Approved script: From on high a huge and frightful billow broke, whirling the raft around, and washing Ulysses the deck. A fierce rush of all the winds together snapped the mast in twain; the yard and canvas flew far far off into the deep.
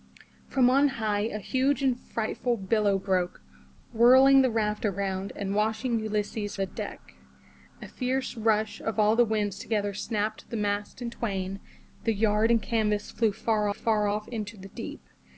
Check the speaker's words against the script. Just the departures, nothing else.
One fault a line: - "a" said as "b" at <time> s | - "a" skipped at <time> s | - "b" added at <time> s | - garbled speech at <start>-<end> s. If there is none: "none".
none